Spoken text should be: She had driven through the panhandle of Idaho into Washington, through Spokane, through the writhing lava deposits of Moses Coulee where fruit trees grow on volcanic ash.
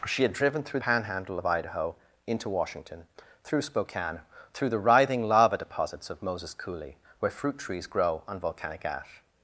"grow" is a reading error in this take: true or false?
false